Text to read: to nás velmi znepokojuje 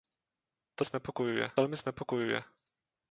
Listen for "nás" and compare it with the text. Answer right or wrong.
wrong